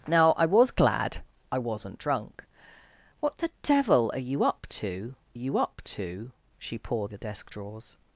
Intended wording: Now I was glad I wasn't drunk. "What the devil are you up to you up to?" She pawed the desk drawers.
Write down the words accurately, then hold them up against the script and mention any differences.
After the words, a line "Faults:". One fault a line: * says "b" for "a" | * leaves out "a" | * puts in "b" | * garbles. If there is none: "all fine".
Now I was glad I wasn't drunk. "What the devil are you up to you up to?" She pawed the desk drawers.
Faults:
all fine